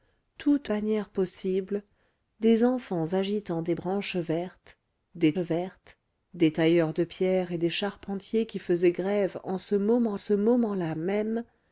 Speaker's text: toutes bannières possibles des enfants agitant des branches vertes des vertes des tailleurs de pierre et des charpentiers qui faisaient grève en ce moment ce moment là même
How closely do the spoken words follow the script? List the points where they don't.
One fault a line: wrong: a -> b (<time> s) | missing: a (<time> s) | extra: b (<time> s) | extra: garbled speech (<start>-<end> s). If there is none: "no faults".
no faults